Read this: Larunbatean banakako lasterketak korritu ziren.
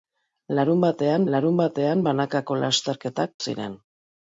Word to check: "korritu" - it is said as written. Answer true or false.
false